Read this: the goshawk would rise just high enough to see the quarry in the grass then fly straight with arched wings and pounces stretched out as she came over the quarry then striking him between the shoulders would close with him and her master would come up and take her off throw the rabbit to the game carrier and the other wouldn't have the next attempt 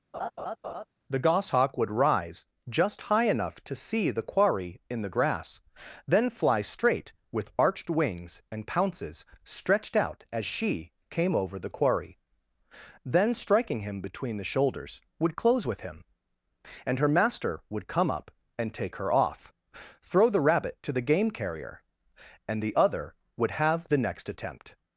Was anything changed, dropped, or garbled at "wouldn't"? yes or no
yes